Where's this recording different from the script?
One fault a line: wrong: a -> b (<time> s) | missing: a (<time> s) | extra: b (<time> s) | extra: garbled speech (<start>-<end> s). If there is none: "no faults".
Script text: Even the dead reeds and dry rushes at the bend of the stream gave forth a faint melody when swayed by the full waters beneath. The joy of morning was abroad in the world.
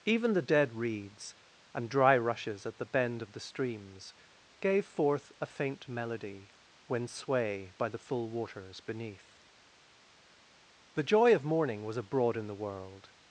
wrong: stream -> streams (3.4 s)
wrong: swayed -> sway (7.1 s)